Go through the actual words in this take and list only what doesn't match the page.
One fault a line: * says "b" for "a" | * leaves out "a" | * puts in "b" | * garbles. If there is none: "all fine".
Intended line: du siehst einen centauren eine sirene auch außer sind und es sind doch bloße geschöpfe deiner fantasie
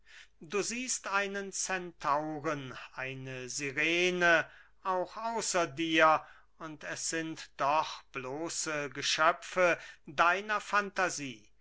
* says "dir" for "sind"